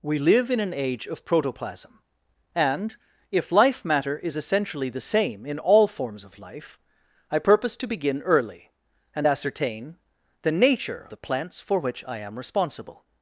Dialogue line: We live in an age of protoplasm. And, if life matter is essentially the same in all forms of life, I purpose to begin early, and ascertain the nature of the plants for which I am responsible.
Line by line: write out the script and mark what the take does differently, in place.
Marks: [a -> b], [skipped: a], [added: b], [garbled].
We live in an age of protoplasm. And, if life matter is essentially the same in all forms of life, I purpose to begin early, and ascertain the nature [skipped: of] the plants for which I am responsible.